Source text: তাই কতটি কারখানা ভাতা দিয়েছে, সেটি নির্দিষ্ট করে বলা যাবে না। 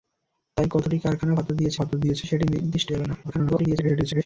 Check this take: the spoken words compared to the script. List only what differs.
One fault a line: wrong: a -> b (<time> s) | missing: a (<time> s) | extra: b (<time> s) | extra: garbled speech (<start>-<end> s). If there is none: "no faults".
extra: ভাতা দিয়েছে (1.7 s)
missing: করে বলা (2.9 s)
extra: garbled speech (3.2-4.3 s)